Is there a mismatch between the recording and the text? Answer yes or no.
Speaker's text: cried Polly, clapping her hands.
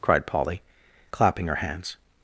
no